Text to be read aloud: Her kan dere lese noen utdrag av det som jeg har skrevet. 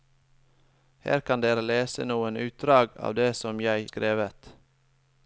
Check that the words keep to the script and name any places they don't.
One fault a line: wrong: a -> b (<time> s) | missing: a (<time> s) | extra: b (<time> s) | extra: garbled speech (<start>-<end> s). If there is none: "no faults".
missing: har (3.9 s)